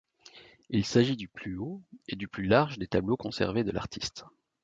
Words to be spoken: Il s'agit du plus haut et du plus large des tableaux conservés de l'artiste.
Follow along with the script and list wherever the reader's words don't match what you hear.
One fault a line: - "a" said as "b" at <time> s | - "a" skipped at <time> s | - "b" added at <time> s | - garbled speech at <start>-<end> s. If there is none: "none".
none